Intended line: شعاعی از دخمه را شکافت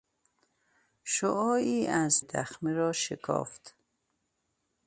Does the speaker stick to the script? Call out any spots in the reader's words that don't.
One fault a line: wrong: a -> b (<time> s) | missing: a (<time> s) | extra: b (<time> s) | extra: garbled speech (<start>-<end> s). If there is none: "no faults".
no faults